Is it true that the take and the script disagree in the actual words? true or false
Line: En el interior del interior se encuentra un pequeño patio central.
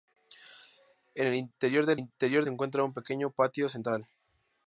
false